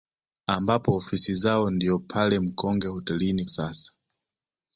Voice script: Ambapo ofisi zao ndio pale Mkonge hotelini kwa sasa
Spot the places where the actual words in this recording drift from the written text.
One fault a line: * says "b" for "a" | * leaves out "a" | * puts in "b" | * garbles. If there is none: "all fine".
* leaves out "kwa"